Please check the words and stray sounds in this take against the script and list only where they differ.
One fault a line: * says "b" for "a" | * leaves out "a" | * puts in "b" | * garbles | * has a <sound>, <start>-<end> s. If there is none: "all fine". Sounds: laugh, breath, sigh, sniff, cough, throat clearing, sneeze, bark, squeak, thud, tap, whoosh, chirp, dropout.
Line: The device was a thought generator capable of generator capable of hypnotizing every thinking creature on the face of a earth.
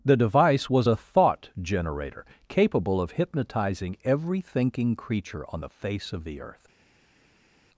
* leaves out "generator capable of"
* says "the" for "a"